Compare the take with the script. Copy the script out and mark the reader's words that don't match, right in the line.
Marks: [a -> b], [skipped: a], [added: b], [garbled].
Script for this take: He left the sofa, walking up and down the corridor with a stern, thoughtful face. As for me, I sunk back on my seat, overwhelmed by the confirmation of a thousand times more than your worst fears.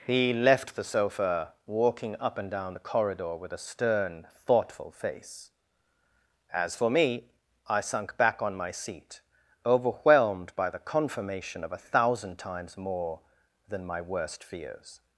He left the sofa, walking up and down the corridor with a stern, thoughtful face. As for me, I sunk back on my seat, overwhelmed by the confirmation of a thousand times more than [your -> my] worst fears.